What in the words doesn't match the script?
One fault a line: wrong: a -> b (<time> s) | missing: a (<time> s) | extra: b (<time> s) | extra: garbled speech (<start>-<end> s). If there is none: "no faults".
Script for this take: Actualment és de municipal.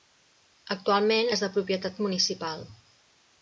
extra: propietat (1.6 s)